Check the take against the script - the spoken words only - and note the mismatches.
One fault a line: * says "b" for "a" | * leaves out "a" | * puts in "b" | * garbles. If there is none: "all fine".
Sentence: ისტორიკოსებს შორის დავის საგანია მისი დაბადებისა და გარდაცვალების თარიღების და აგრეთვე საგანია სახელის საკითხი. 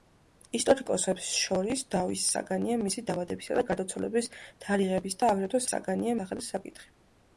all fine